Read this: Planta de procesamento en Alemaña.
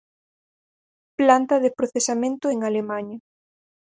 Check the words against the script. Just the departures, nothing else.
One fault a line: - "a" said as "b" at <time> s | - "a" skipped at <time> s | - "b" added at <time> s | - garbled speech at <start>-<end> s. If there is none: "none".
none